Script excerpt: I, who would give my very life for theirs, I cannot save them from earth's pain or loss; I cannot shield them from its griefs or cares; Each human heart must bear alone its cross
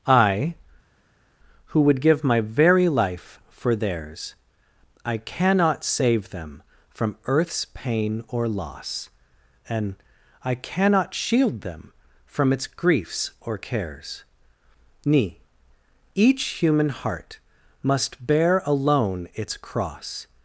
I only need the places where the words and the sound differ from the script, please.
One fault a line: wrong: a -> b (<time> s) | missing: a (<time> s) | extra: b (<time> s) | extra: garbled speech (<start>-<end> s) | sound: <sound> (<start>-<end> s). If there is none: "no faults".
extra: and (9.7 s)
extra: ni (15.0 s)